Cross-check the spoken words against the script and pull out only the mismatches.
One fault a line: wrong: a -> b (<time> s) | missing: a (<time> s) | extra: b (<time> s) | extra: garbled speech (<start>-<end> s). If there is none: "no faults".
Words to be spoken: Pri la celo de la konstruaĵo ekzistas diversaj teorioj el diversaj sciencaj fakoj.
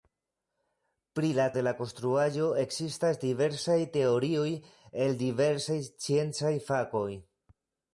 missing: celo (1.4 s)